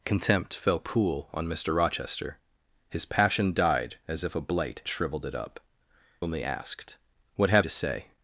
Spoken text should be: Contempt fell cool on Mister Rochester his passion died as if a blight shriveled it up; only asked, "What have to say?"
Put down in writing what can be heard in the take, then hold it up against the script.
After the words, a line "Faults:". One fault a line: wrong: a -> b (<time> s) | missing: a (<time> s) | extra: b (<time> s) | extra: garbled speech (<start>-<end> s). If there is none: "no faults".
Contempt fell cool on Mister Rochester his passion died as if a blight shriveled it up; only asked, "What have to say?"
Faults:
no faults